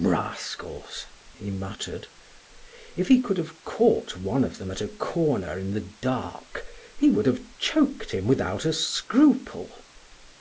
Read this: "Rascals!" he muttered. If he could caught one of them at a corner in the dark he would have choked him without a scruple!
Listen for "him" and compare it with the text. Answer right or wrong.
right